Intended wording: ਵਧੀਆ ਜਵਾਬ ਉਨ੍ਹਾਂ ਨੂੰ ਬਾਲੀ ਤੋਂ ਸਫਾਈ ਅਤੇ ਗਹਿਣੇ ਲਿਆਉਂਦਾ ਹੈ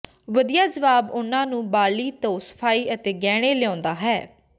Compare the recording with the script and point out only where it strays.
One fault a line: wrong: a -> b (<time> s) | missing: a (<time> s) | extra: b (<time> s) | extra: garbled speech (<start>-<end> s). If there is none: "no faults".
no faults